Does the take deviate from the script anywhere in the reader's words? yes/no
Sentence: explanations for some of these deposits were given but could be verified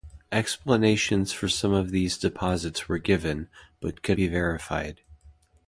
no